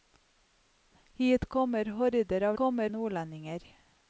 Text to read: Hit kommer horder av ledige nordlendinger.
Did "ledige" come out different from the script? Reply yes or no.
yes